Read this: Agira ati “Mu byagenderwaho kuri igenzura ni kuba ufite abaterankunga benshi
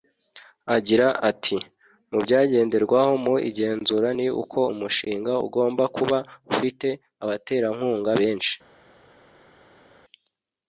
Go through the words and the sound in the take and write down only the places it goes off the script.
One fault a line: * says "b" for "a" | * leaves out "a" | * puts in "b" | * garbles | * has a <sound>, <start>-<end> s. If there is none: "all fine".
* says "mu" for "kuri"
* puts in "uko umushinga ugomba"